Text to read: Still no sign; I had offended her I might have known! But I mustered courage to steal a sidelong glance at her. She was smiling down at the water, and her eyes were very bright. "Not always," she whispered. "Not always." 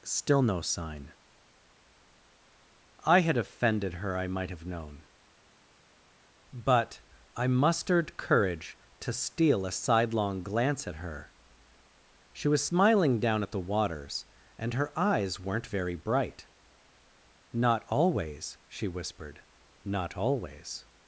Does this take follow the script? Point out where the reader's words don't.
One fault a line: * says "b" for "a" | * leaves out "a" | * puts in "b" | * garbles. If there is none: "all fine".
* says "waters" for "water"
* says "weren't" for "were"